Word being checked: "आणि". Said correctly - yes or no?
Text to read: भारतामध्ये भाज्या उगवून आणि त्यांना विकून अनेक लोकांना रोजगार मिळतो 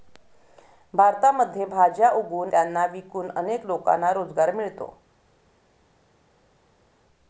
no